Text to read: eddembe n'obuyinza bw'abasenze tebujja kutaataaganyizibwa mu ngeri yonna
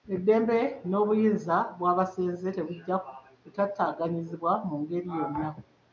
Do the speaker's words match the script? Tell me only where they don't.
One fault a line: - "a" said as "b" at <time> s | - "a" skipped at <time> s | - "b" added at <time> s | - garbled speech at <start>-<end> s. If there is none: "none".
none